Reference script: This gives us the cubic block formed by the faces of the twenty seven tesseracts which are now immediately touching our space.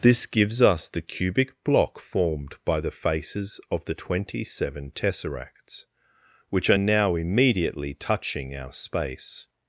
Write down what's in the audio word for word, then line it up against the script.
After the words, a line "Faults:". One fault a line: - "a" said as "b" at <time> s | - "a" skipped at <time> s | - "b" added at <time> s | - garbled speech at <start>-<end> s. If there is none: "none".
This gives us the cubic block formed by the faces of the twenty seven tesseracts which are now immediately touching our space.
Faults:
none